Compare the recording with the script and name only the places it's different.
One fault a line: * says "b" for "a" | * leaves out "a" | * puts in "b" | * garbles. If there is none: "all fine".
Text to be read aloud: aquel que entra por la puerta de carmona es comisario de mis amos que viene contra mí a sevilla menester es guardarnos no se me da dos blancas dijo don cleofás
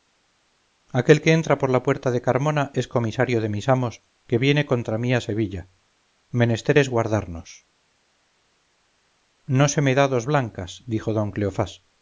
all fine